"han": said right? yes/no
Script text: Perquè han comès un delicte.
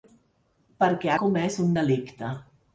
no